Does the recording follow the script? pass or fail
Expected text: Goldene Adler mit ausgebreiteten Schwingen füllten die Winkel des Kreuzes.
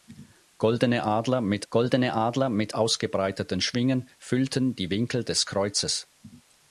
fail